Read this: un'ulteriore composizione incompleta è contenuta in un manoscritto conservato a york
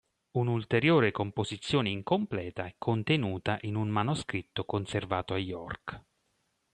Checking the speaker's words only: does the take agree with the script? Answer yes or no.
yes